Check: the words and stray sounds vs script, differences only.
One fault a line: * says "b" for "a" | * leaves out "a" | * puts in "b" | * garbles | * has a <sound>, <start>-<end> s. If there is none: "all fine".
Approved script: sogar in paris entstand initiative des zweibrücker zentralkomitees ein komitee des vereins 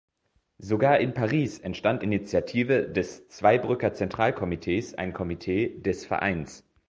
all fine